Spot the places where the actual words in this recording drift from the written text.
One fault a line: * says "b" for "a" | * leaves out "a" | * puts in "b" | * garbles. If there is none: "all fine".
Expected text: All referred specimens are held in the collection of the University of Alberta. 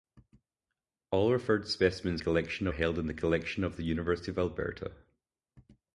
* says "collection" for "are"